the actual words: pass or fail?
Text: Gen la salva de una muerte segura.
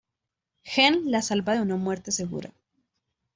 pass